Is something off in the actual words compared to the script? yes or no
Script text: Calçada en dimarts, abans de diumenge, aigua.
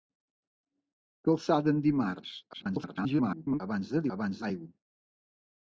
yes